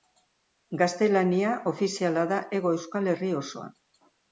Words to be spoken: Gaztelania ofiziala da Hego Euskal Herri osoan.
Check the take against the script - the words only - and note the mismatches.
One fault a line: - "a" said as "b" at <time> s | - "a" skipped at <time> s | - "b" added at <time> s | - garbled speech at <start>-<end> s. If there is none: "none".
none